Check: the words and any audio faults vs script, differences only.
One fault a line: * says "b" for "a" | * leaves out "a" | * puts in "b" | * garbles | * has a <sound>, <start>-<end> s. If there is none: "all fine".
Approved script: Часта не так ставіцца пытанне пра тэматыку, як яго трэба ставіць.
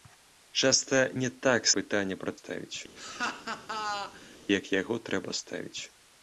* leaves out "ставіцца"
* says "ставіць" for "тэматыку"
* has a laugh, 3.0-4.4 s